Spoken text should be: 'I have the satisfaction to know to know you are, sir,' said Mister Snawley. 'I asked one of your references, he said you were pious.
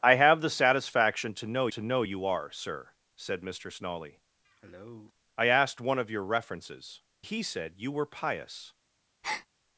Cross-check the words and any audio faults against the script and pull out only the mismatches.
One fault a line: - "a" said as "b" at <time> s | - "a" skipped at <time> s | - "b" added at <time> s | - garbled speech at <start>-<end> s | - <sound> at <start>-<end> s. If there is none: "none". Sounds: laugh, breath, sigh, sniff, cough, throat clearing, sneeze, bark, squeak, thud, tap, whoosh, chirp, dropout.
- cough at 4.4-5.1 s
- breath at 9.2-9.5 s